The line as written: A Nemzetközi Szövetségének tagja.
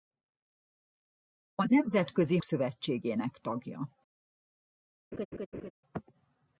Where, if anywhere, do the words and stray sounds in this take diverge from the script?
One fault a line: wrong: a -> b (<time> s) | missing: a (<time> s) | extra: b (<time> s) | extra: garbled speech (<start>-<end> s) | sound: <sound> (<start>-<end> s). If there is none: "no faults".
sound: laugh (5.1-5.7 s)